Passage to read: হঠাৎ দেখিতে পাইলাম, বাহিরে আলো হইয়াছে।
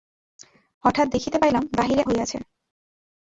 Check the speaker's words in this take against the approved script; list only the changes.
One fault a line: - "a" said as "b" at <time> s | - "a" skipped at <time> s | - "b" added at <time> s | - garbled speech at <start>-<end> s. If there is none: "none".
- "আলো" skipped at 2.0 s